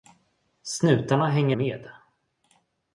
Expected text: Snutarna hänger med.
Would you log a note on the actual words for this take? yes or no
no